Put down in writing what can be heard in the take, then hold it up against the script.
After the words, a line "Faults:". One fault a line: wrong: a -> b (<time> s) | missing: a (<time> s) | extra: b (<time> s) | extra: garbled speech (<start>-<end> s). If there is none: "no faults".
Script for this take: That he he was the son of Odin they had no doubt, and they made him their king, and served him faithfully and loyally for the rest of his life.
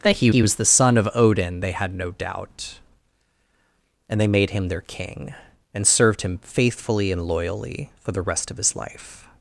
That he he was the son of Odin they had no doubt, and they made him their king, and served him faithfully and loyally for the rest of his life.
Faults:
no faults